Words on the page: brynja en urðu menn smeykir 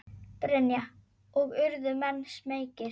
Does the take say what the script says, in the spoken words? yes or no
no